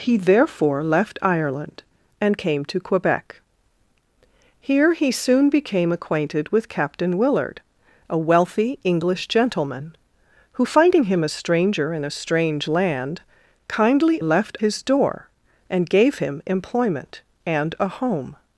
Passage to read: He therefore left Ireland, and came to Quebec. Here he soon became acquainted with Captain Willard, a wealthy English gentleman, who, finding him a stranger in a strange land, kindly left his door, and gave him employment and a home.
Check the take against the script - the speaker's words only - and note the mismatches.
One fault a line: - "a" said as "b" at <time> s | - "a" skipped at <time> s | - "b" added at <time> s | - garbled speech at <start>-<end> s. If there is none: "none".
none